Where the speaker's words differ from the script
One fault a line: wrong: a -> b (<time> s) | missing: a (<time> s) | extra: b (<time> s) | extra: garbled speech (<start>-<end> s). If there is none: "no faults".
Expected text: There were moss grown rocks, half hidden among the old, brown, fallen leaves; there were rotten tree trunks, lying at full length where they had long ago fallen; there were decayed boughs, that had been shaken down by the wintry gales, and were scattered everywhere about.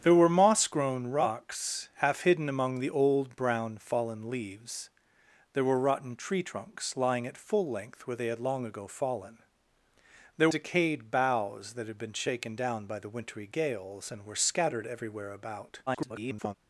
missing: were (10.5 s)
extra: garbled speech (15.9-16.6 s)